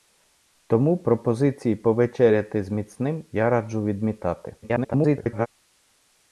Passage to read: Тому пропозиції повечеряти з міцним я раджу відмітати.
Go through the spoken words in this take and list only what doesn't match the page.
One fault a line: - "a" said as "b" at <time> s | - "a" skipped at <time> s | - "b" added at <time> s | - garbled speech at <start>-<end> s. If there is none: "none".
- garbled speech at 4.6-5.5 s